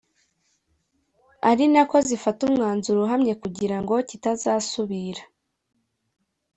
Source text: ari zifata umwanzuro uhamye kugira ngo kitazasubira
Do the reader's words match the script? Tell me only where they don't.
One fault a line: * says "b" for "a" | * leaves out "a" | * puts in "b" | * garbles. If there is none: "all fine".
* puts in "nako"